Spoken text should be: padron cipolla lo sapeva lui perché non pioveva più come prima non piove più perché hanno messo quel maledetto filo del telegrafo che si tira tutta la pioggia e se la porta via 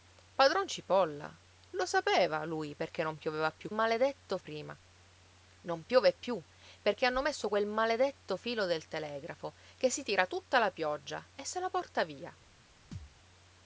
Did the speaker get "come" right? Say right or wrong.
wrong